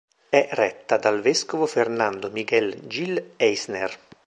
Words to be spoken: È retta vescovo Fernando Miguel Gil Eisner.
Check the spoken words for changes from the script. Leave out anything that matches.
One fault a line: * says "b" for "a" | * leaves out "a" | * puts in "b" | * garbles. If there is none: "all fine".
* puts in "dal"